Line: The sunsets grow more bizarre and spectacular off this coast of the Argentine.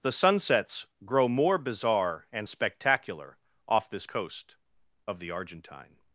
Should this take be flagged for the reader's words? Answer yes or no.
no